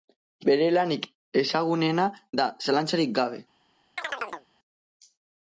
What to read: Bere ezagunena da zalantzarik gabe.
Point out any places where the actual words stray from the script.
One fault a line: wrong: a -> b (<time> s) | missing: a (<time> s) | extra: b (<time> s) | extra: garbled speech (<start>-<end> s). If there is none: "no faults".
extra: lanik (0.8 s)